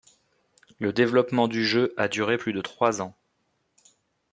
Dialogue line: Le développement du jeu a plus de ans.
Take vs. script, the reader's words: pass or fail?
fail